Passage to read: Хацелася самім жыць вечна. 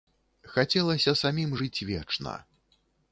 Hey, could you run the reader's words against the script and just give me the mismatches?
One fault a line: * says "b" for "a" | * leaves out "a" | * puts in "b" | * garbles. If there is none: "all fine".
all fine